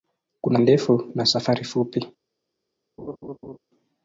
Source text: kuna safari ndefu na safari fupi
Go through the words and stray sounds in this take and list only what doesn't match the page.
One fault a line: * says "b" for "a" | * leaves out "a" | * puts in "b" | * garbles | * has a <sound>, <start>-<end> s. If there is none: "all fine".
* leaves out "safari"
* has a laugh, 3.0-3.6 s